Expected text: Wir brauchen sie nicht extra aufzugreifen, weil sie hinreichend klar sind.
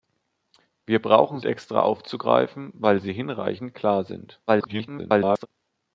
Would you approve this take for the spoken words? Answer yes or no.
no